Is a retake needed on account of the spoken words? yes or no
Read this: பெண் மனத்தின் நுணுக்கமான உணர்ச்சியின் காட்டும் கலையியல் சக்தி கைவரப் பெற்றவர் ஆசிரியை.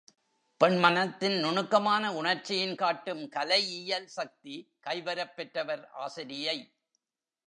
no